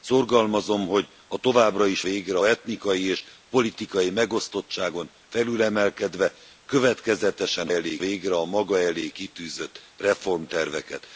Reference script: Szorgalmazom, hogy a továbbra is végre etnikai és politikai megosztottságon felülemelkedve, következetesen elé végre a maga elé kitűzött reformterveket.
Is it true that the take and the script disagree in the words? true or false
false